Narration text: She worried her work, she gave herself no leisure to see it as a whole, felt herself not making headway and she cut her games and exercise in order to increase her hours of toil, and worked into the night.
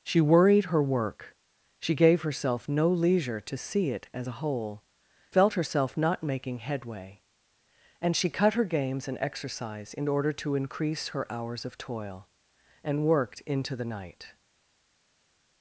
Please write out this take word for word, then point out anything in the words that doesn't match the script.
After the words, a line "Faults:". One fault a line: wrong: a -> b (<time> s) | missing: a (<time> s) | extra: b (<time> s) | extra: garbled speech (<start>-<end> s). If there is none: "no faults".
She worried her work, she gave herself no leisure to see it as a whole, felt herself not making headway and she cut her games and exercise in order to increase her hours of toil, and worked into the night.
Faults:
no faults